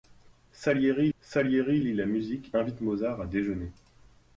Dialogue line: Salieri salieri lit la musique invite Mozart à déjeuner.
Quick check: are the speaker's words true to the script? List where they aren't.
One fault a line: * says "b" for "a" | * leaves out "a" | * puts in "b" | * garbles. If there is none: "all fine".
all fine